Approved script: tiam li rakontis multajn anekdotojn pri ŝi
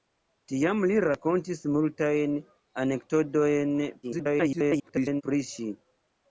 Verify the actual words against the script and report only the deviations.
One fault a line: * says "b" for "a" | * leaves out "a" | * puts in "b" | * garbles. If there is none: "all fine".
* garbles